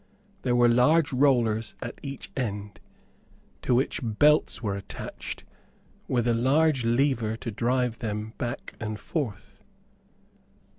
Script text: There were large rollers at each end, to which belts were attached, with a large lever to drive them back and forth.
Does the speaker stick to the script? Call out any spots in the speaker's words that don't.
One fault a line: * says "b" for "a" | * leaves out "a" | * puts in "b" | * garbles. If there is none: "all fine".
all fine